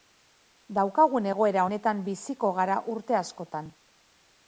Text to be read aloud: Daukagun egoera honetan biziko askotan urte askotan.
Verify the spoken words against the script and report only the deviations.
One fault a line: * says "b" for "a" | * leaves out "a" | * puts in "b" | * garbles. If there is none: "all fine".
* says "gara" for "askotan"